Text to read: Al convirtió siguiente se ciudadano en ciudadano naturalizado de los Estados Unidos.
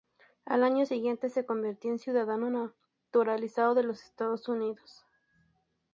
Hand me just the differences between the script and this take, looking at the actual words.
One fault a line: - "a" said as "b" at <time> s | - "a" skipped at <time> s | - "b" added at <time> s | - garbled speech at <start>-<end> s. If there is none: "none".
- "convirtió" said as "año" at 0.6 s
- "ciudadano" said as "convirtió" at 1.4 s